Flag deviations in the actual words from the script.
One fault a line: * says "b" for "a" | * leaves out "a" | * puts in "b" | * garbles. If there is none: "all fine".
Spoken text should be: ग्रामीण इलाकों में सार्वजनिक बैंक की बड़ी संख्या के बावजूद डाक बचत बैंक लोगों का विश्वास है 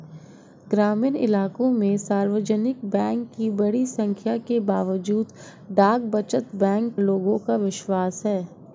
all fine